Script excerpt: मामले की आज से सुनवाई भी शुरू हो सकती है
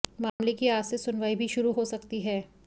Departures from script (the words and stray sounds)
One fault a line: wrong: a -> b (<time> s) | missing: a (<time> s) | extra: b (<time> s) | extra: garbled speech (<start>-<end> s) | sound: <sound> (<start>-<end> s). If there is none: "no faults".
sound: dropout (0.3-0.4 s)